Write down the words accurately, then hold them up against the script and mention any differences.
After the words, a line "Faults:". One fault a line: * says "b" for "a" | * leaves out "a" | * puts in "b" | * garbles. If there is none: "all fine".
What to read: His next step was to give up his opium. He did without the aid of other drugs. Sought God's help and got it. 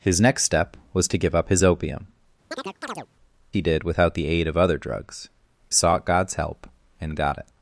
His next step was to give up his opium. He did without the aid of other drugs. Sought God's help and got it.
Faults:
all fine